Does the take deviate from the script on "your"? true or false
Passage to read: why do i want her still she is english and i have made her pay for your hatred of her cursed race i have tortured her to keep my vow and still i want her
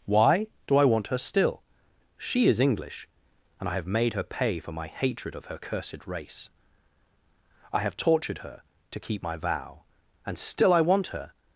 true